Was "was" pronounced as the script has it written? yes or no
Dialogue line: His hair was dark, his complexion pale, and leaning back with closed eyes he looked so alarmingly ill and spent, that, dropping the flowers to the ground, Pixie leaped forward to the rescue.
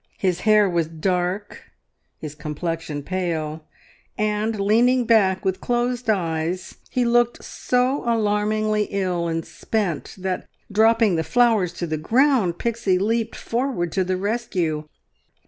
yes